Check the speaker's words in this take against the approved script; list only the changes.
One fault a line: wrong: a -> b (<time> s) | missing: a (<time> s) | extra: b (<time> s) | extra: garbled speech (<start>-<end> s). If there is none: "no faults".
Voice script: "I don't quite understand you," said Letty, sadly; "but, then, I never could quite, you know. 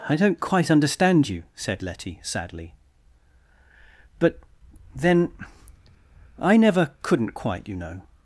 wrong: could -> couldn't (7.0 s)